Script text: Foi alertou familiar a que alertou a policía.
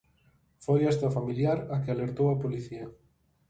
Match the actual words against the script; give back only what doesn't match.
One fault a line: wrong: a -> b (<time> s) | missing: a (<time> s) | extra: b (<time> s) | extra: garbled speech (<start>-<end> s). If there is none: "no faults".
wrong: alertou -> esta (0.9 s)